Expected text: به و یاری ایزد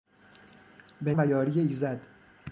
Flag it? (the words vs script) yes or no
no